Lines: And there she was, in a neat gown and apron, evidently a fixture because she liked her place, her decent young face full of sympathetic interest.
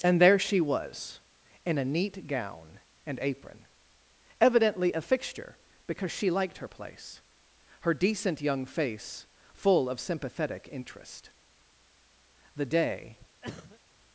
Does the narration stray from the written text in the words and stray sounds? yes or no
yes